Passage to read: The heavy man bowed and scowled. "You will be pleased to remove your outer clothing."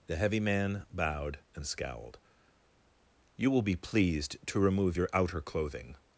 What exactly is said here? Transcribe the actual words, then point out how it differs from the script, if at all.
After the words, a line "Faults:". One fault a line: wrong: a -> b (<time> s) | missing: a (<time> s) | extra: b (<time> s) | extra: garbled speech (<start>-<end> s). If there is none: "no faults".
The heavy man bowed and scowled. "You will be pleased to remove your outer clothing."
Faults:
no faults